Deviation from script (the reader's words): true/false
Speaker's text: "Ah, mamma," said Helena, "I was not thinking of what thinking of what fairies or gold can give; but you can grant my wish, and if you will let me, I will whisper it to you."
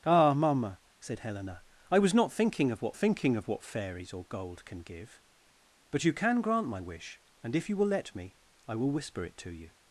false